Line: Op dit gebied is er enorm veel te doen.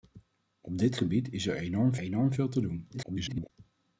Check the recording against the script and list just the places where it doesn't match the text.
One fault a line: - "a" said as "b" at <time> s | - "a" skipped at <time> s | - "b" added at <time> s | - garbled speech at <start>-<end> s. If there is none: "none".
- "enorm" added at 2.0 s
- garbled speech at 2.9-3.5 s